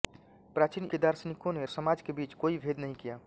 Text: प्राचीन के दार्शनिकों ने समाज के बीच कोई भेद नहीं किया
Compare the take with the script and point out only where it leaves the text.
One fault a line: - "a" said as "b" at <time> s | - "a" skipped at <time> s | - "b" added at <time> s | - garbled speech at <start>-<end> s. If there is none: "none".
none